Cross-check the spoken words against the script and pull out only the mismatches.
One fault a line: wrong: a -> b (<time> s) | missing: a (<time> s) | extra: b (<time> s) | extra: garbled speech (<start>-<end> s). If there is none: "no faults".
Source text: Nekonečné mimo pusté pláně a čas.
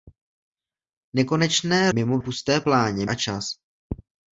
no faults